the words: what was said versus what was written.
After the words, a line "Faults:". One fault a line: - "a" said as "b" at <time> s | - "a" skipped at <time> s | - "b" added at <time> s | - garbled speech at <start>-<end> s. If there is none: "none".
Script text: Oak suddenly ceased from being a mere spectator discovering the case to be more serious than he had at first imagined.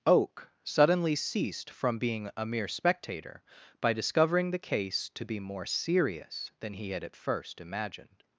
Oak suddenly ceased from being a mere spectator by discovering the case to be more serious than he had at first imagined.
Faults:
- "by" added at 3.8 s